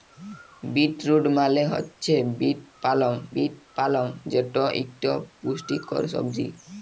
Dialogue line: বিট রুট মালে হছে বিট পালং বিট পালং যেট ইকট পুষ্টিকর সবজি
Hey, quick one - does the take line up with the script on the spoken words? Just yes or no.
yes